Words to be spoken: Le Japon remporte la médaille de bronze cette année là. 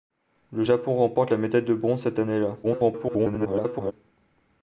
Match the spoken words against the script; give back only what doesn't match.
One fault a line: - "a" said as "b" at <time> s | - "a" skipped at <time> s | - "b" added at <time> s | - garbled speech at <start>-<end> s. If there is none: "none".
- garbled speech at 2.6-3.9 s